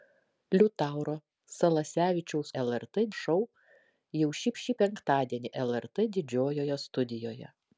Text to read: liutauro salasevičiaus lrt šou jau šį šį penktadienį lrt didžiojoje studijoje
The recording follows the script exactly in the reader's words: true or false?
true